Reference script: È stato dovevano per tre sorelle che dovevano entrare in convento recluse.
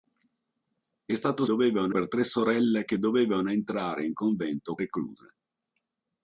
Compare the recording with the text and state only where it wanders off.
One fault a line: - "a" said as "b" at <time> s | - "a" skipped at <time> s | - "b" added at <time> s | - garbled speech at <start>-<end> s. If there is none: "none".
none